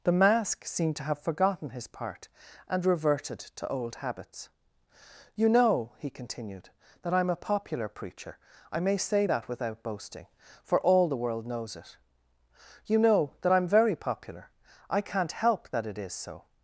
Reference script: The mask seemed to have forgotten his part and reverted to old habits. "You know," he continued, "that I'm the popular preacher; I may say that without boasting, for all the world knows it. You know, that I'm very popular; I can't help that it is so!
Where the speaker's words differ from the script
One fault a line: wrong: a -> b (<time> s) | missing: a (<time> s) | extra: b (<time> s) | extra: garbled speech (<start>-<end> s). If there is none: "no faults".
wrong: the -> a (7.3 s)